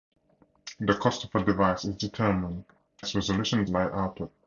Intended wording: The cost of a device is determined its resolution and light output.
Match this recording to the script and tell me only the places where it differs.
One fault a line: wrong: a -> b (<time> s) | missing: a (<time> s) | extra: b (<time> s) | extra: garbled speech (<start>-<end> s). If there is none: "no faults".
no faults